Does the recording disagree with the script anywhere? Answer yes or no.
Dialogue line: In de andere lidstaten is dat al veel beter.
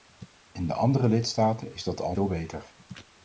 no